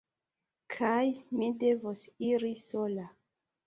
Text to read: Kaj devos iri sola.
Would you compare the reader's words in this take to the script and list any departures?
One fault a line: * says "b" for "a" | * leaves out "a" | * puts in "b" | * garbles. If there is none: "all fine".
* puts in "mi"